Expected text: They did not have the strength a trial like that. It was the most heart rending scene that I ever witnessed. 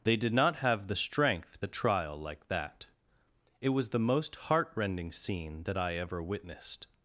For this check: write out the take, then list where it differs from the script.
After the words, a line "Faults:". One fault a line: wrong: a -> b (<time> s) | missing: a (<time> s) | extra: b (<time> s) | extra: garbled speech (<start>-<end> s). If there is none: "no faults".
They did not have the strength a trial like that. It was the most heart rending scene that I ever witnessed.
Faults:
no faults